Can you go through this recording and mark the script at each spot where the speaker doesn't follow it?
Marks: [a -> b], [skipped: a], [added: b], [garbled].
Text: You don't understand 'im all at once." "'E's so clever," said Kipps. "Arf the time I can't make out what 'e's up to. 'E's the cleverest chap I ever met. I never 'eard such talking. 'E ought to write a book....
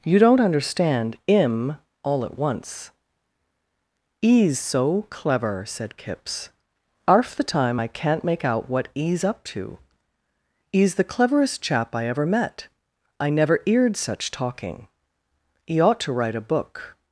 You don't understand 'im all at once." "'E's so clever," said Kipps. "Arf the time I can't make out what 'e's up to. 'E's the cleverest chap I ever met. I never 'eard such talking. 'E ought to write a book....